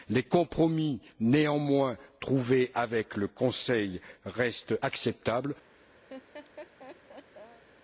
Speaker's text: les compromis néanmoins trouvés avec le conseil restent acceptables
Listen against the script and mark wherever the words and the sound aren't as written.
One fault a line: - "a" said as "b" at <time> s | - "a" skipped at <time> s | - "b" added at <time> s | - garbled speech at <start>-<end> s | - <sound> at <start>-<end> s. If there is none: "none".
- laugh at 6.1-7.6 s